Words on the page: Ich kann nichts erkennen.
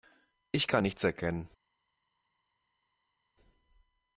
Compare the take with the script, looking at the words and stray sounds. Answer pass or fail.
pass